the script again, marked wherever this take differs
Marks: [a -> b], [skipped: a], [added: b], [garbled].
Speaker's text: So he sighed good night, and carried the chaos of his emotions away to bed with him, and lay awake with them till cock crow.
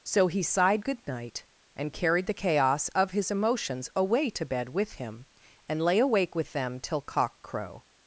So he sighed good night, and carried the chaos of his emotions away to bed with him, and lay awake with them till cock crow.